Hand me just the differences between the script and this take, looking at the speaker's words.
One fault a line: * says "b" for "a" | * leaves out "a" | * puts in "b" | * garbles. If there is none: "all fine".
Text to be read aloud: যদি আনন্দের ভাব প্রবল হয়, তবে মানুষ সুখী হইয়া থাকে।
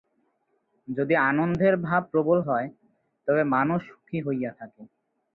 all fine